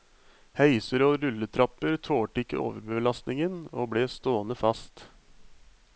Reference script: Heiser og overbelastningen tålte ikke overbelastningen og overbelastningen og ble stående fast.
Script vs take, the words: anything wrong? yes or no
yes